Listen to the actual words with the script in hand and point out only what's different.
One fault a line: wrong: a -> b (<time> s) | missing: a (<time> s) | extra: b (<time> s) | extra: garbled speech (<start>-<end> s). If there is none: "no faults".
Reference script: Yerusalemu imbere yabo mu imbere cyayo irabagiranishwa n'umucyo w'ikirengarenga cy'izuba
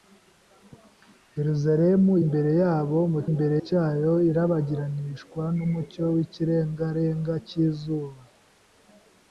no faults